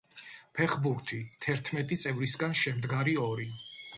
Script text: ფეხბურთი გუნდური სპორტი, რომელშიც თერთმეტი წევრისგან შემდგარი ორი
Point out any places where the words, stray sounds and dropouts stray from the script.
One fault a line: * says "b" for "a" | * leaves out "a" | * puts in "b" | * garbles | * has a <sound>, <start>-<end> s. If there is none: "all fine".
* leaves out "გუნდური სპორტი რომელშიც"